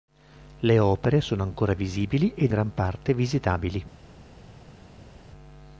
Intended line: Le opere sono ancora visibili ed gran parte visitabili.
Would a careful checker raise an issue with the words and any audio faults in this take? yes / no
no